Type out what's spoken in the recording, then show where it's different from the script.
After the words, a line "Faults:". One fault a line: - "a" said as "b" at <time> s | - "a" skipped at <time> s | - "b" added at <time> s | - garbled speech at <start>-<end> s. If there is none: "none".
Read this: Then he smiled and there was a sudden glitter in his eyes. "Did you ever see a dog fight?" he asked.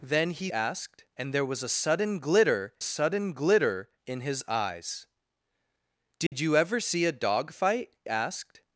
Then he asked and there was a sudden glitter sudden glitter in his eyes. "Did you ever see a dog fight?" asked.
Faults:
- "smiled" said as "asked" at 0.5 s
- "sudden glitter" added at 2.8 s
- "he" skipped at 8.0 s